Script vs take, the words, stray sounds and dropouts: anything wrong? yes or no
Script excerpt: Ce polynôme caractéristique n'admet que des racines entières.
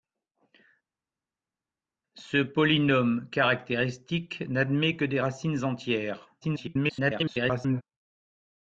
yes